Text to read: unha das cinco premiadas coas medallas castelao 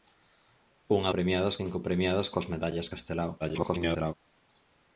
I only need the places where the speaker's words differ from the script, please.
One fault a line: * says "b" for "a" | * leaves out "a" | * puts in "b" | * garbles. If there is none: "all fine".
* says "premiadas" for "das"
* garbles